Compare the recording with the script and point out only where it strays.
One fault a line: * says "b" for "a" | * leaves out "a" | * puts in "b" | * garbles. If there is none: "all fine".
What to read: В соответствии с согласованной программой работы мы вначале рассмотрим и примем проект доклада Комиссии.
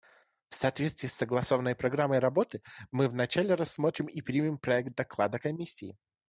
all fine